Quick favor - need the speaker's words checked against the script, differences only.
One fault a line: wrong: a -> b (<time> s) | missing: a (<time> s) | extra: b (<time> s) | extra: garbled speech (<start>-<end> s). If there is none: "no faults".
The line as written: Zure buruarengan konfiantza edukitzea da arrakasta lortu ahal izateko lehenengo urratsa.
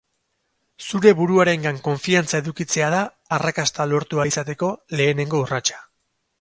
no faults